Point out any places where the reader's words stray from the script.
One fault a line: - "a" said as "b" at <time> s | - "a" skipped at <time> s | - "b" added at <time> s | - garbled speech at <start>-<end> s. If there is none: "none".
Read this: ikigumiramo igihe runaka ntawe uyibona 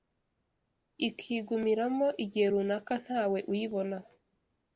none